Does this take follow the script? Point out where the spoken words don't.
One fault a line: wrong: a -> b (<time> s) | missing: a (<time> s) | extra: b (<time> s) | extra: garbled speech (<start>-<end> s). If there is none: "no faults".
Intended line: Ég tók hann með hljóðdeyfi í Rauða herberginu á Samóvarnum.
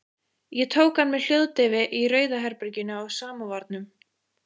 no faults